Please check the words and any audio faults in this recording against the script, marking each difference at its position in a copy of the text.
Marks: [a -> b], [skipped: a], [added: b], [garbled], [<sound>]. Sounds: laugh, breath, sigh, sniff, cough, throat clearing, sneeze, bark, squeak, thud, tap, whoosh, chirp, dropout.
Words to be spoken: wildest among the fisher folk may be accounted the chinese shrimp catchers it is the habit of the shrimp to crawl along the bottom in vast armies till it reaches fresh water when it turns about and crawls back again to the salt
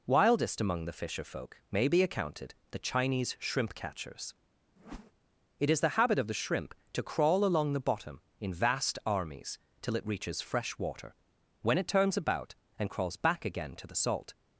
wildest among the fisher folk may be accounted the chinese shrimp catchers [whoosh] it is the habit of the shrimp to crawl along the bottom in vast armies till it reaches fresh water when it turns about and crawls back again to the salt